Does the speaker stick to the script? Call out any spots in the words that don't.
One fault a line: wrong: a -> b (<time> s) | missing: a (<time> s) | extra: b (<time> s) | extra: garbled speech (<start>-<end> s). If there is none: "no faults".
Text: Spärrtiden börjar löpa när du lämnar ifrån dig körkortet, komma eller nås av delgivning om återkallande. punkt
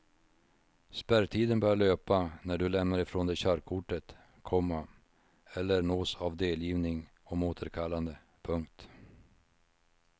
no faults